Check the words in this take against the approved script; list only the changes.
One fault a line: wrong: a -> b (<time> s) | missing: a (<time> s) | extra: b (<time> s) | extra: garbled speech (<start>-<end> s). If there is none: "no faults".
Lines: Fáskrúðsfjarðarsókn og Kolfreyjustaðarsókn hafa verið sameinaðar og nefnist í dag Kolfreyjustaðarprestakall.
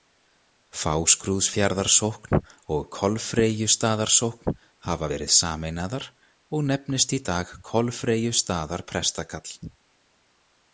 no faults